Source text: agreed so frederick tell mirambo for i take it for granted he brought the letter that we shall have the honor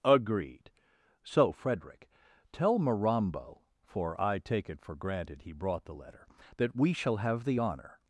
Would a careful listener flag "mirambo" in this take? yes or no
no